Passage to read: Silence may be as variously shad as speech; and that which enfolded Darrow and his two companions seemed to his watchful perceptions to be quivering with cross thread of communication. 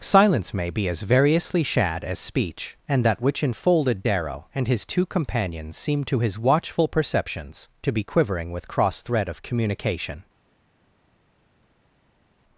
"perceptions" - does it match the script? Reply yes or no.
yes